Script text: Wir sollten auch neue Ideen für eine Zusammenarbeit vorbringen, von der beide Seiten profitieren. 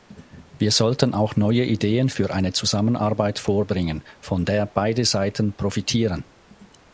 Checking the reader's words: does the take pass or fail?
pass